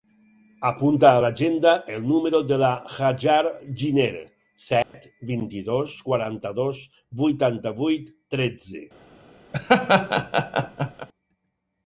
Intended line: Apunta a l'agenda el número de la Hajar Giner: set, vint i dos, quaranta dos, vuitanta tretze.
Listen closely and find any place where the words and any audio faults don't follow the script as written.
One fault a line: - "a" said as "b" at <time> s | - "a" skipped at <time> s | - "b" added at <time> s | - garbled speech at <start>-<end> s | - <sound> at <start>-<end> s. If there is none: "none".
- dropout at 4.8-4.9 s
- "vuit" added at 7.8 s
- laugh at 9.5-11.1 s